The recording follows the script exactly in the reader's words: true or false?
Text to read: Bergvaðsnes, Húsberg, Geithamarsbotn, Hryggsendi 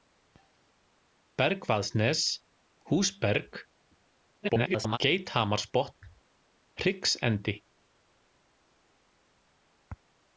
false